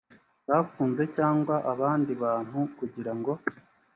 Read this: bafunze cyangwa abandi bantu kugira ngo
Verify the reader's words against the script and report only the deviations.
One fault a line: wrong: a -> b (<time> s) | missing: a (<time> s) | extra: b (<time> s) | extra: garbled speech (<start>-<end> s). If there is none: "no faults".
no faults